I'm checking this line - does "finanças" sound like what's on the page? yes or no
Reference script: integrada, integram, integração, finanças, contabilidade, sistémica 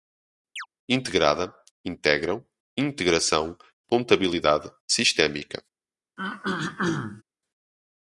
no